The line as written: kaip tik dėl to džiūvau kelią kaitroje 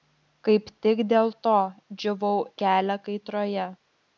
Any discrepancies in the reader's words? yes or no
no